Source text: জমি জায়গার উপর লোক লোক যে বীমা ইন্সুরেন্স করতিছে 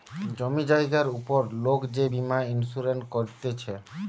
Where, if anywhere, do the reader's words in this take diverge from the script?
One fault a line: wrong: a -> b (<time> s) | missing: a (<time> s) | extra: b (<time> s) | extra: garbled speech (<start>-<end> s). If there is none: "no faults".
missing: লোক (1.8 s)